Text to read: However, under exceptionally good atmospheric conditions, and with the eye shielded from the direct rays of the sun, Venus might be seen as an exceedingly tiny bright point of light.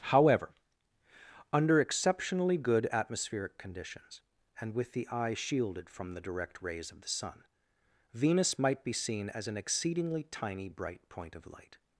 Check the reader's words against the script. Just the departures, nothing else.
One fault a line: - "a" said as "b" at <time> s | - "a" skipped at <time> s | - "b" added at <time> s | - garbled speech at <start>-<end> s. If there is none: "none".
none